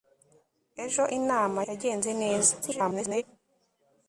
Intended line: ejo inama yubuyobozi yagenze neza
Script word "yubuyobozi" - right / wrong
wrong